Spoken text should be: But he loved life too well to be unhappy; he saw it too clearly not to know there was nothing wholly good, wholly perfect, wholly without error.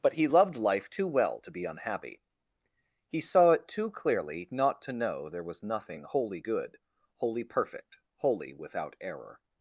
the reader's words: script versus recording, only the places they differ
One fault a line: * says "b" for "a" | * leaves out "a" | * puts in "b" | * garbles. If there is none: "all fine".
all fine